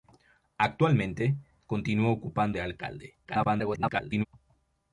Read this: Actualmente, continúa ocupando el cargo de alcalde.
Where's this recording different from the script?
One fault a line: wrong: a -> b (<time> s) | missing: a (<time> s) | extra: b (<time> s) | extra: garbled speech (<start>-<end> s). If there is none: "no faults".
missing: el cargo (2.6 s)
extra: garbled speech (3.2-4.3 s)